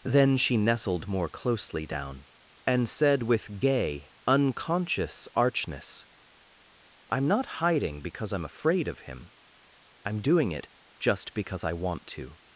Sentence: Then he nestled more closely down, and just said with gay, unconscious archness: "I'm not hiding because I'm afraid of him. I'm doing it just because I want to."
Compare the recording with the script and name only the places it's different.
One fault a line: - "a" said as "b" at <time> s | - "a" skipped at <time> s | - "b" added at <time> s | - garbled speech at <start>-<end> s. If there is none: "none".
- "he" said as "she" at 0.3 s
- "just" skipped at 2.9 s